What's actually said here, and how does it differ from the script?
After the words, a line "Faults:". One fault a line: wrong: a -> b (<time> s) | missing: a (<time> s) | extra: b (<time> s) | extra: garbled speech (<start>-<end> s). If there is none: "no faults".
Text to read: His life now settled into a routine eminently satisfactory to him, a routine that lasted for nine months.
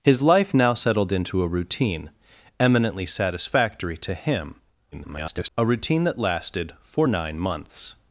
His life now settled into a routine eminently satisfactory to him, [garbled] a routine that lasted for nine months.
Faults:
extra: garbled speech (4.9-5.5 s)